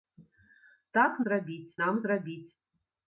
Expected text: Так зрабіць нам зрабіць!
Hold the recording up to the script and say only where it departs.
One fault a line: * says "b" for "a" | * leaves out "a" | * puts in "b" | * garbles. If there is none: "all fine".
all fine